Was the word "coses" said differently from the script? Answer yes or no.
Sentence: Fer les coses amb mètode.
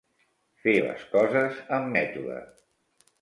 no